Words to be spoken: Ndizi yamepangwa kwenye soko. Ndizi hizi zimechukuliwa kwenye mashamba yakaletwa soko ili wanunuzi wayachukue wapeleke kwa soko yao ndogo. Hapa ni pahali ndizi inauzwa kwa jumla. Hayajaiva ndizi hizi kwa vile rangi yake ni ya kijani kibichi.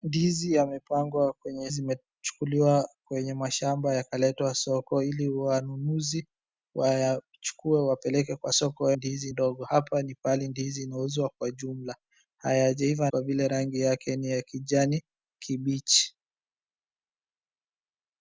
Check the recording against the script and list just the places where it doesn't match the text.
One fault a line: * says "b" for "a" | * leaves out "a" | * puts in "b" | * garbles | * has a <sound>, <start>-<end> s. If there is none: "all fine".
* leaves out "soko Ndizi hizi"
* says "ndizi" for "yao"
* leaves out "ndizi hizi"